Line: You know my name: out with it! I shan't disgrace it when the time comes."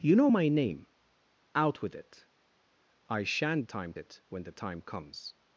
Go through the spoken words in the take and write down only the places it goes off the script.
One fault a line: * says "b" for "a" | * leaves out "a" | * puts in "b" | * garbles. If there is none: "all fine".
* says "time" for "disgrace"